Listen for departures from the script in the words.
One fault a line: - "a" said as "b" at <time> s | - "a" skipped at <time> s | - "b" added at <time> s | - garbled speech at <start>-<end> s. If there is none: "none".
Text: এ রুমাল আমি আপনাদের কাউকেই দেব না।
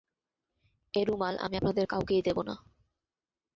none